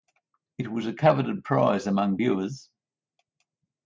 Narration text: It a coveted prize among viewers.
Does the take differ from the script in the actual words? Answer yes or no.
yes